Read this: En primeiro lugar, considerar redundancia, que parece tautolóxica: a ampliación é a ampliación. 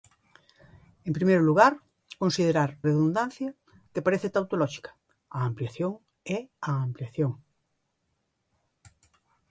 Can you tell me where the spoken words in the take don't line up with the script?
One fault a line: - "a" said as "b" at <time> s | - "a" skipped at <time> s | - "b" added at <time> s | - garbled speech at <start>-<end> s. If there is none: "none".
none